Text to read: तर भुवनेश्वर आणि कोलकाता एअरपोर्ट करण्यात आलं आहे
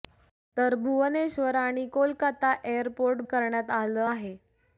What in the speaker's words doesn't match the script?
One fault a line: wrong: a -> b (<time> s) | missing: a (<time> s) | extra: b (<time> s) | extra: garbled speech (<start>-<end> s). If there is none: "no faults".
no faults